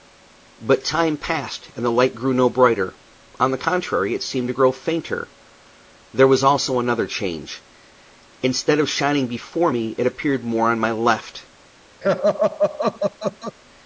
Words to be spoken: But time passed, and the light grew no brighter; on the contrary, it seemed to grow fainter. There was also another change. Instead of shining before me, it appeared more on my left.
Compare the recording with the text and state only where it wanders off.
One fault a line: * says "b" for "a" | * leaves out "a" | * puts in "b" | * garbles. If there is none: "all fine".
all fine